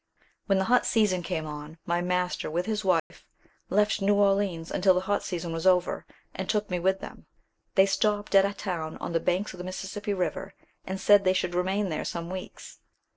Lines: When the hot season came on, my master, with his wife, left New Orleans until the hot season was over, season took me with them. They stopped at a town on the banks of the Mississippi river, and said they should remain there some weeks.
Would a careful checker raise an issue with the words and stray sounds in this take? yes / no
yes